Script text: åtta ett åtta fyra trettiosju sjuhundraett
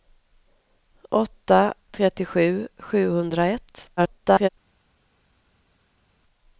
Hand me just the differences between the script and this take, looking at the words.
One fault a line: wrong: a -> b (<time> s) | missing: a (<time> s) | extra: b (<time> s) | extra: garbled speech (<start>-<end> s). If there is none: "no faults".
missing: ett åtta fyra (1.7 s)
extra: garbled speech (4.0-4.5 s)